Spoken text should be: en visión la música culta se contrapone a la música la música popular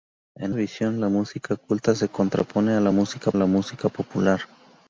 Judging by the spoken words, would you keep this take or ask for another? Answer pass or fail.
pass